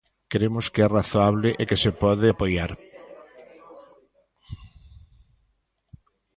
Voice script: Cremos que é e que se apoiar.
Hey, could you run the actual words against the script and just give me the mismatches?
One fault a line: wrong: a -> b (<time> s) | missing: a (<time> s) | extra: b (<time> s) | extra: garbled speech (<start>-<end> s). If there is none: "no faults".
extra: razoable (0.9 s)
extra: pode (2.0 s)